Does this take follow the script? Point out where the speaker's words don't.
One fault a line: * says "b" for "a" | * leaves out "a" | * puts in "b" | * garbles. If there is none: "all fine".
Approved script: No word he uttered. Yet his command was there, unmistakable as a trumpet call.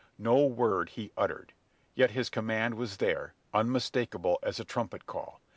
all fine